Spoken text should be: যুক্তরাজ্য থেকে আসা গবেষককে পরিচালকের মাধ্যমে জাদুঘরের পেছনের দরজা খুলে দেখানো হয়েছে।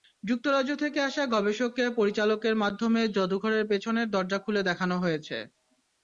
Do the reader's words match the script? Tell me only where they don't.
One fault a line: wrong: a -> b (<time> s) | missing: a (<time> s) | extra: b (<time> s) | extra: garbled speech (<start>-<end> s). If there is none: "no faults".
no faults